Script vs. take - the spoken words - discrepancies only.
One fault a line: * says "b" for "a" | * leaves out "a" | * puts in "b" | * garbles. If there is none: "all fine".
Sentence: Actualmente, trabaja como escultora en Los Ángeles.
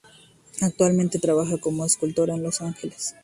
all fine